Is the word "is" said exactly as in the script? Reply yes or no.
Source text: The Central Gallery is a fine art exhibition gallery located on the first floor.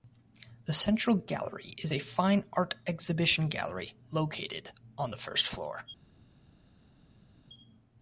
yes